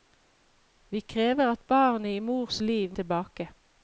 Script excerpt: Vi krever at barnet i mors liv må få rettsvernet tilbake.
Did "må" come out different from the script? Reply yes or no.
yes